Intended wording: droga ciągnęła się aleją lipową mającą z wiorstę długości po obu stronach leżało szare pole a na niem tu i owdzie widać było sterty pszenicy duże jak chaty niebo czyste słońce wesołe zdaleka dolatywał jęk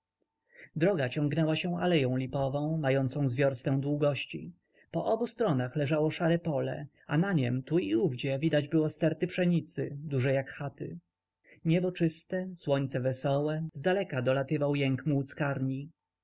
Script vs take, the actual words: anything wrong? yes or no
no